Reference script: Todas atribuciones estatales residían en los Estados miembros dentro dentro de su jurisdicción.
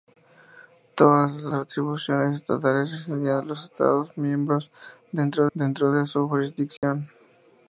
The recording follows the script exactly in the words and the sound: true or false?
false